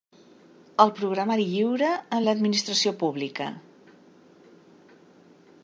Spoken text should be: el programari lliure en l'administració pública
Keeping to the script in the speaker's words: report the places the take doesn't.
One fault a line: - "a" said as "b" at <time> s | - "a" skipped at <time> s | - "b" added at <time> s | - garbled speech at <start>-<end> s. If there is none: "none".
none